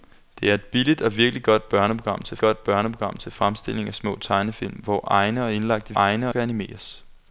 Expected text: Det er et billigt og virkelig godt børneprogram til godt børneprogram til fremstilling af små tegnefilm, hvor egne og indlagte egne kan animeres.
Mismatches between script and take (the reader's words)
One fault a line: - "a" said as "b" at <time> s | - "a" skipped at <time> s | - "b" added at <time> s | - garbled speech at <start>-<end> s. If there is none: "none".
none